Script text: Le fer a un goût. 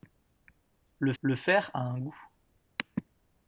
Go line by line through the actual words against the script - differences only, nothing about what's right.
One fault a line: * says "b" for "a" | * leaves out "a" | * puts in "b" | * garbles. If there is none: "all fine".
* puts in "le"